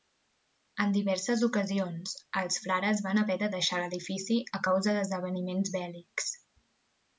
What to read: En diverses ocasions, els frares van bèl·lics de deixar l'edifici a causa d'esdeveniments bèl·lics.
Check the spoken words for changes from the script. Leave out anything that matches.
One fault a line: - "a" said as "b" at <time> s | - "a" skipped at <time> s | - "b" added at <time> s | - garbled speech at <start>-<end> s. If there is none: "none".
- "bèl·lics" said as "haver" at 3.2 s